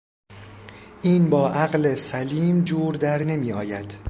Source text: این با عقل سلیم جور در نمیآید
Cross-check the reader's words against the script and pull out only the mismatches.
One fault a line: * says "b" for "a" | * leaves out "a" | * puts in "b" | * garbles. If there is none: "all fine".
all fine